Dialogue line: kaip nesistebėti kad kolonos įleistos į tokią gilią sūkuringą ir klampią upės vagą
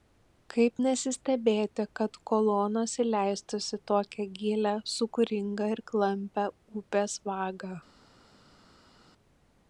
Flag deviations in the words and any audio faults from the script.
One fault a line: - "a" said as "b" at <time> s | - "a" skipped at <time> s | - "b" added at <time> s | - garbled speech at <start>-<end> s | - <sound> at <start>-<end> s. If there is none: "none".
none